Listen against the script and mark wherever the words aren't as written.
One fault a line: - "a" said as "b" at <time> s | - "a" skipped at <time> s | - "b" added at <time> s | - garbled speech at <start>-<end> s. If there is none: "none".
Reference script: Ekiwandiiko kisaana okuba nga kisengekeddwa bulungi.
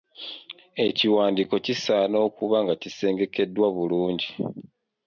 none